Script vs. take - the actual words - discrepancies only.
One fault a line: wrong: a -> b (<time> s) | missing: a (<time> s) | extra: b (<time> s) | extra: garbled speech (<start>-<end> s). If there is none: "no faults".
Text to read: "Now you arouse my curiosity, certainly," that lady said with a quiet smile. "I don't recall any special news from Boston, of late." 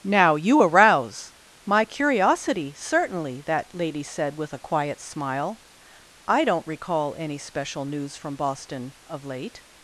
no faults